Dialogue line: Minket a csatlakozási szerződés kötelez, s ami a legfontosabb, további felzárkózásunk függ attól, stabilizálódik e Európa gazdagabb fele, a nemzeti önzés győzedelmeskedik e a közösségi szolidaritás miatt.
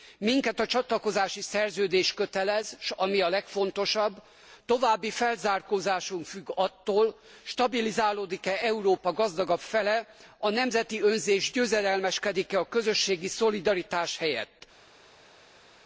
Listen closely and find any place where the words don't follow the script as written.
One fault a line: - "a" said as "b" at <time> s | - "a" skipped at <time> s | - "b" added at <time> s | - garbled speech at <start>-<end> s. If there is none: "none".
- "miatt" said as "helyett" at 14.2 s